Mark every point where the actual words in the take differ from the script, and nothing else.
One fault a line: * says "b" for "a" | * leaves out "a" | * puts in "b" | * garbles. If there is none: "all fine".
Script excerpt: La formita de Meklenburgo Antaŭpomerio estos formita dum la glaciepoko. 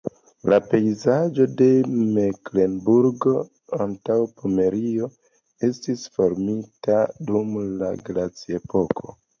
* says "pejzaĝo" for "formita"
* says "estis" for "estos"